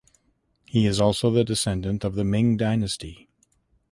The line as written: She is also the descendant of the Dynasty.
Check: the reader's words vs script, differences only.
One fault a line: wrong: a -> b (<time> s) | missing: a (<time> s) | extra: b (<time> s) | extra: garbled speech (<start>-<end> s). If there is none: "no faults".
wrong: She -> He (0.7 s)
extra: Ming (2.2 s)